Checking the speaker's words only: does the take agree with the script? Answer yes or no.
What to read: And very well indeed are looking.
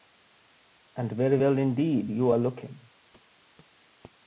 no